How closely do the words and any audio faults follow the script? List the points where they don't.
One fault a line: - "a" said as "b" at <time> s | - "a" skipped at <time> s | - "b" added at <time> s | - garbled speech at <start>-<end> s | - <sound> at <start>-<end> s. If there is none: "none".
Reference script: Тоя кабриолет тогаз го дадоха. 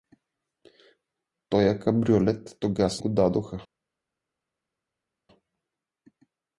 none